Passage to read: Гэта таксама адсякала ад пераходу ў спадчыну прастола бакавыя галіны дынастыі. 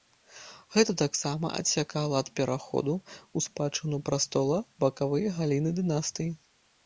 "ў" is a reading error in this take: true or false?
false